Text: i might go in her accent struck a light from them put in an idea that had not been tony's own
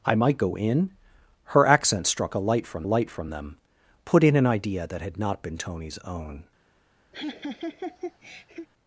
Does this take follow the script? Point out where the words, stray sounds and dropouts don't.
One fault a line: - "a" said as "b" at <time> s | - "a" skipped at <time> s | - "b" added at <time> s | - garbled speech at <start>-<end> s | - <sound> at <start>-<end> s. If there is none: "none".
- "light from" added at 2.8 s
- laugh at 7.1-8.7 s